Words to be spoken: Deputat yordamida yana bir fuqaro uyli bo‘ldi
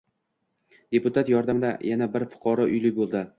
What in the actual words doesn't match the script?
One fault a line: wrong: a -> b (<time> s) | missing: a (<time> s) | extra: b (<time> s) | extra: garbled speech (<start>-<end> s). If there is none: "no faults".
no faults